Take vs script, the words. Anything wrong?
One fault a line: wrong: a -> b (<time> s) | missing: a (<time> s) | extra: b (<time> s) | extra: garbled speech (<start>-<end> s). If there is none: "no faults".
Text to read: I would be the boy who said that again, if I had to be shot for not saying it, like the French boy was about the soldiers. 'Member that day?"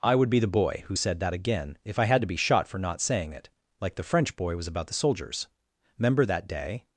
no faults